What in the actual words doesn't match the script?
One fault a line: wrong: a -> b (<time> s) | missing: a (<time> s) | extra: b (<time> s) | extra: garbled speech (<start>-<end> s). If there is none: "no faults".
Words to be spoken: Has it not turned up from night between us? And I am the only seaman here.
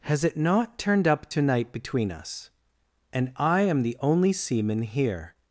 wrong: from -> to (1.3 s)